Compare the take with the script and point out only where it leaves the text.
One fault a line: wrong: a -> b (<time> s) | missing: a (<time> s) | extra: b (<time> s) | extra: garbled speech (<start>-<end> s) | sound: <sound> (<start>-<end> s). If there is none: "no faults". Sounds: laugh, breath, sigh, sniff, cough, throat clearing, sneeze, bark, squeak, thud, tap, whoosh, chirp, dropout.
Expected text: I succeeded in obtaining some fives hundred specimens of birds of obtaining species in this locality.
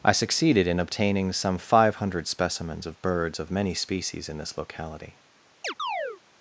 wrong: fives -> five (1.6 s)
wrong: obtaining -> many (3.5 s)
sound: chirp (5.6-6.2 s)